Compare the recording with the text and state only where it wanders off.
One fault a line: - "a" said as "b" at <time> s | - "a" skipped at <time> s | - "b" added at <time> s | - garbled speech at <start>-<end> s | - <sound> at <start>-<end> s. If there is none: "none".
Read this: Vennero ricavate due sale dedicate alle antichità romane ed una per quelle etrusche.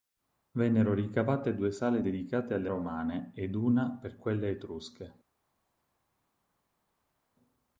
- "antichità" skipped at 2.7 s